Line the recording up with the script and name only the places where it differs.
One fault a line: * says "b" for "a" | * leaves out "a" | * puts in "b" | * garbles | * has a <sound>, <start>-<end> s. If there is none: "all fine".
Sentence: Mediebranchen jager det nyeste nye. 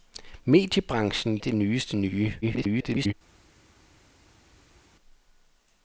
* leaves out "jager"
* garbles